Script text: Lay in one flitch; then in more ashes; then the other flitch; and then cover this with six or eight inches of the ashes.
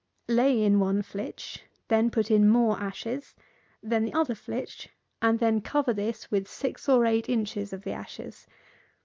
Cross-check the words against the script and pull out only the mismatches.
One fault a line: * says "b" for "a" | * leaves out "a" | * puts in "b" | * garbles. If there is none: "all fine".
* puts in "put"